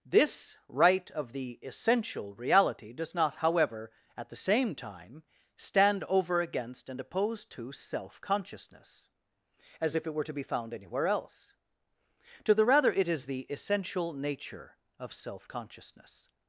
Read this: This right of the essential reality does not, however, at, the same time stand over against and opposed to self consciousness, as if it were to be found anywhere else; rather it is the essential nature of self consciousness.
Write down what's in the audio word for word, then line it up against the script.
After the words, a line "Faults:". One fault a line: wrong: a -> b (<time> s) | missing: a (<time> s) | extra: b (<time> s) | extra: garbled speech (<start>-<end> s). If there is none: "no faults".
This right of the essential reality does not, however, at, the same time stand over against and opposed to self consciousness, as if it were to be found anywhere else; to the rather it is the essential nature of self consciousness.
Faults:
extra: to the (12.4 s)